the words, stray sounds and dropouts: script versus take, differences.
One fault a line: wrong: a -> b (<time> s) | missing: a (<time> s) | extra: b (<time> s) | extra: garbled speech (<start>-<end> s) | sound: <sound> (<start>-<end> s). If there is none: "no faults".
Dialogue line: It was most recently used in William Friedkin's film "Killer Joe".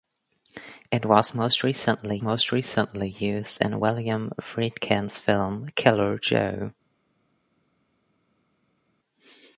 extra: most recently (2.2 s)